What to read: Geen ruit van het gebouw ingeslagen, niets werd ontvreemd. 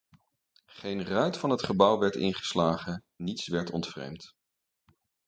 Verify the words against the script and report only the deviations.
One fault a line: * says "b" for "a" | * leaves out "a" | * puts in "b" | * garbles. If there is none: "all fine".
* puts in "werd"